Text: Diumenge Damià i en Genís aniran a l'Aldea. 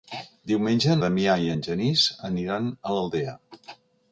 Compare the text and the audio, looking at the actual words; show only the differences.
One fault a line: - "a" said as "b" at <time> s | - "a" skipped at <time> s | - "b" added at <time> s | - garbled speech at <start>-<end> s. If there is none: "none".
none